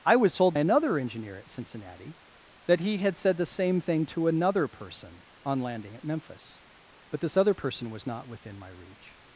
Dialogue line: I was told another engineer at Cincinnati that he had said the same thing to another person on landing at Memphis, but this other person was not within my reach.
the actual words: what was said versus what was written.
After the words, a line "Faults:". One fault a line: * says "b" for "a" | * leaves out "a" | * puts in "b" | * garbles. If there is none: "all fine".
I was told another engineer at Cincinnati that he had said the same thing to another person on landing at Memphis, but this other person was not within my reach.
Faults:
all fine